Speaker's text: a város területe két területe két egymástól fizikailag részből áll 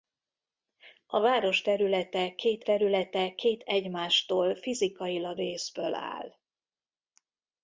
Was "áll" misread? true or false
false